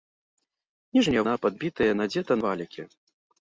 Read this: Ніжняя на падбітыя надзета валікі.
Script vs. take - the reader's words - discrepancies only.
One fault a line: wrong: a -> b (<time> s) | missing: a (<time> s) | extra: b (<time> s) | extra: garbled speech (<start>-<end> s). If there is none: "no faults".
no faults